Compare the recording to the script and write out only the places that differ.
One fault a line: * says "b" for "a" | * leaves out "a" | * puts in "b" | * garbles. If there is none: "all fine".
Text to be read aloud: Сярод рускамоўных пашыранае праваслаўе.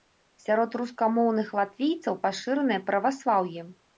* puts in "латвійцаў"